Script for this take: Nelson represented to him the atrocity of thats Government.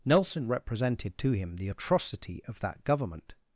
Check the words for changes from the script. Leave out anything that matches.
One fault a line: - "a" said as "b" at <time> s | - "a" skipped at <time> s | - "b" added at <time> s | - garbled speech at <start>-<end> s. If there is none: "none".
- "thats" said as "that" at 2.6 s